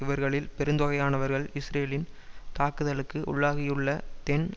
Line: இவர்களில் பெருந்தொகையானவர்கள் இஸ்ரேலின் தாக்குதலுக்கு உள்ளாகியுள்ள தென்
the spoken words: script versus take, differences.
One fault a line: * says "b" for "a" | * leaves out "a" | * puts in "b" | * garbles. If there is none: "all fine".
all fine